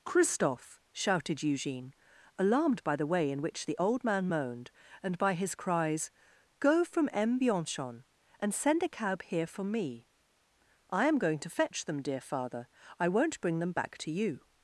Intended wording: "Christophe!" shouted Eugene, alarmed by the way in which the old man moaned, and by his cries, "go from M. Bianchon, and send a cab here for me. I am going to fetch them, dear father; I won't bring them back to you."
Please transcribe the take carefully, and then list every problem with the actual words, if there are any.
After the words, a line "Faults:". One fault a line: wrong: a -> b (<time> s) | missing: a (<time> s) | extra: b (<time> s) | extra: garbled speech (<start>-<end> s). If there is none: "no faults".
"Christophe!" shouted Eugene, alarmed by the way in which the old man moaned, and by his cries, "go from M. Bianchon, and send a cab here for me. I am going to fetch them, dear father; I won't bring them back to you."
Faults:
no faults